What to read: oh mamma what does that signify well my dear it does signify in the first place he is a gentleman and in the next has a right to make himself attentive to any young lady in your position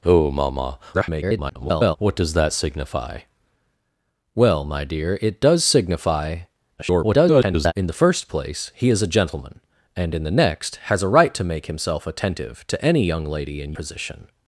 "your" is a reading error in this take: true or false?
true